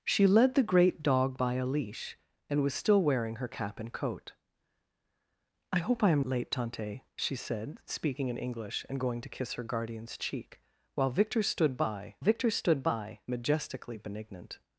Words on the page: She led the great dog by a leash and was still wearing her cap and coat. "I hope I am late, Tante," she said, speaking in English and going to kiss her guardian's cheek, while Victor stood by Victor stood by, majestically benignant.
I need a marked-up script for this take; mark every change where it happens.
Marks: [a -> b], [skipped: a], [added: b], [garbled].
She led the great dog by a leash and was still wearing her cap and coat. "I hope I am late, Tante," she said, speaking in English and going to kiss her guardian's cheek, while Victor stood by Victor stood by, majestically benignant.